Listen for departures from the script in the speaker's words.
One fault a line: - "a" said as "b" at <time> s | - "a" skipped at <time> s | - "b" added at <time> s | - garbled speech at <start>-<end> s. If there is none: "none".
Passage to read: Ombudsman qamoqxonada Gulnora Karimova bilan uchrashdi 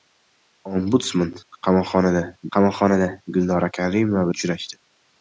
- "qamoqxonada" added at 2.6 s
- "bilan" skipped at 4.3 s